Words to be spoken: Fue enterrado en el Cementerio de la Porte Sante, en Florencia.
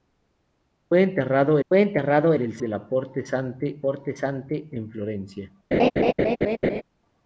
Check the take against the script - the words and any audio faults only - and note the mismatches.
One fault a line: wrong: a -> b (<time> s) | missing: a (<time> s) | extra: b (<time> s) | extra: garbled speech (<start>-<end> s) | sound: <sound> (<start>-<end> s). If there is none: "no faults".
extra: fue enterrado (1.7 s)
missing: Cementerio (2.6 s)
extra: Porte Sante (3.8 s)
sound: laugh (5.7-6.8 s)